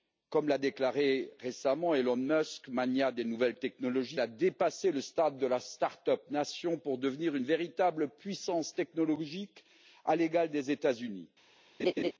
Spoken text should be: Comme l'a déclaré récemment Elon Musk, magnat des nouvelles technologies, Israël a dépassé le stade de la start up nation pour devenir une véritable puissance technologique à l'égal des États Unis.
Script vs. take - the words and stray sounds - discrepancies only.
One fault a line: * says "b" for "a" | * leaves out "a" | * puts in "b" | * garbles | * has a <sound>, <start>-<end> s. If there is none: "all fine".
* leaves out "Israël"
* has a laugh, 11.8-12.1 s